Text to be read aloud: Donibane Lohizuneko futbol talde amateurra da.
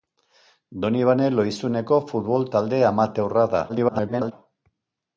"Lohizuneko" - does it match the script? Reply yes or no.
yes